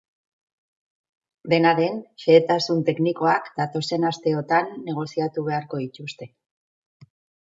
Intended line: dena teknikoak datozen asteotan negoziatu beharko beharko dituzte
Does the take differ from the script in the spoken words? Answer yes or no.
yes